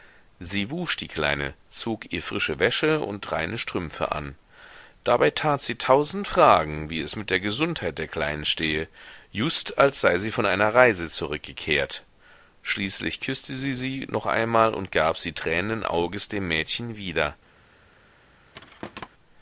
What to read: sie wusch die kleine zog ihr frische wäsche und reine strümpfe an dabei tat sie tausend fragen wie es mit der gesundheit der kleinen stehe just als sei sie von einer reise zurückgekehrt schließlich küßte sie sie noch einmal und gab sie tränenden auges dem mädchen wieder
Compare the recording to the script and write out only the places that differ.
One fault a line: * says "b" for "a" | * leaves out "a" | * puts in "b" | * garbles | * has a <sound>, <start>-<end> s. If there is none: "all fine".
* has a thud, 18.5-19.1 s